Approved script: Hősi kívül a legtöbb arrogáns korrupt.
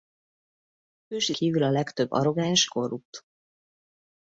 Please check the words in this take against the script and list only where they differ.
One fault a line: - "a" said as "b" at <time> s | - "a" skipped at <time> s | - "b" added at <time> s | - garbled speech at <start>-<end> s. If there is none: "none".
none